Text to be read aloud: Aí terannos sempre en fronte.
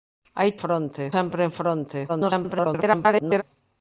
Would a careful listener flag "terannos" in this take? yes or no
yes